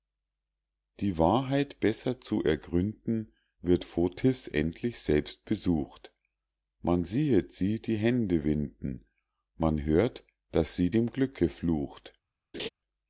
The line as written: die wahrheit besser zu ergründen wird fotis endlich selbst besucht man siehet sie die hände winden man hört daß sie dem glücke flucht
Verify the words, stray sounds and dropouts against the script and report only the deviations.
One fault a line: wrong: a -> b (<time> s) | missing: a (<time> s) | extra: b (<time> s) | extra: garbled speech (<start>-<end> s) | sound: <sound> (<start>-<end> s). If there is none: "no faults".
sound: laugh (12.5-12.7 s)